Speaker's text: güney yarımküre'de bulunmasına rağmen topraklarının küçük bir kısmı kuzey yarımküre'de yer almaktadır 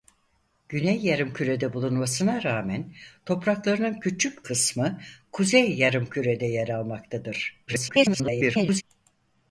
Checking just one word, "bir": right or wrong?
wrong